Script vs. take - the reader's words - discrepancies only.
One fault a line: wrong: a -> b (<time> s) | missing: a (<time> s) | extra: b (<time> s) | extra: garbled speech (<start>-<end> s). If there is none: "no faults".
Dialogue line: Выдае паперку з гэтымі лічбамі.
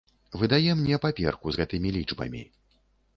extra: мне (0.8 s)